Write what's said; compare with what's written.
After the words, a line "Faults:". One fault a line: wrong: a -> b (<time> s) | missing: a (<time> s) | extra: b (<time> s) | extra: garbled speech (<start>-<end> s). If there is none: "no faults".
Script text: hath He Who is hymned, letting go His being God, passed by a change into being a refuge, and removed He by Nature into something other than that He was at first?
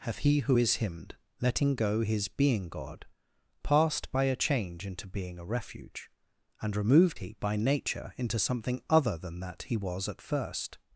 hath He Who is hymned, letting go His being God, passed by a change into being a refuge, and removed He by Nature into something other than that He was at first?
Faults:
no faults